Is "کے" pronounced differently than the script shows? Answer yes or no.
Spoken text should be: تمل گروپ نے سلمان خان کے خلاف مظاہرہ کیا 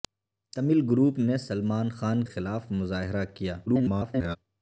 yes